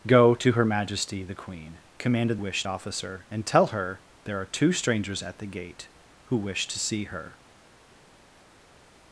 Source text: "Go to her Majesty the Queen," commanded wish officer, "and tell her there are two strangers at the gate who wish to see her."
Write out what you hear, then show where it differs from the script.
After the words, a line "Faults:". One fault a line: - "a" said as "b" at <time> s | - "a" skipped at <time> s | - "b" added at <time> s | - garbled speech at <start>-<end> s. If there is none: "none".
"Go to her Majesty the Queen," commanded wish officer, "and tell her there are two strangers at the gate who wish to see her."
Faults:
none